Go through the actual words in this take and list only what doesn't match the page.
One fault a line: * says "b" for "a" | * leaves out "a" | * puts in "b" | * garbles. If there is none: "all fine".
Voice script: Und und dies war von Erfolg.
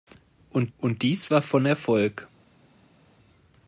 all fine